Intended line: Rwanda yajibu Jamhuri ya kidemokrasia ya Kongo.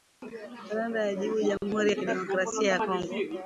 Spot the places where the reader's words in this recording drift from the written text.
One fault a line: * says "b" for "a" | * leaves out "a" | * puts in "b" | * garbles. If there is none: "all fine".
all fine